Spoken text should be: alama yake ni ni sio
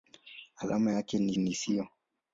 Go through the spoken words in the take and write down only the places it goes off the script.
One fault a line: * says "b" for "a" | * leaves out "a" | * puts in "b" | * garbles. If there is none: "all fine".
all fine